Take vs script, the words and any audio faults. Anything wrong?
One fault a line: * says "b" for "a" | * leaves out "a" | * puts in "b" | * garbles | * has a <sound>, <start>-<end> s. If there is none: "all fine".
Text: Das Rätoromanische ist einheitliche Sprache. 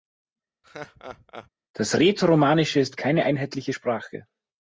* has a laugh, 0.6-1.5 s
* puts in "keine"